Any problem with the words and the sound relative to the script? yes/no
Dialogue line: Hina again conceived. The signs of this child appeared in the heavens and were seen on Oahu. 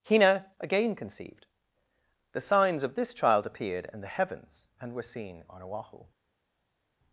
no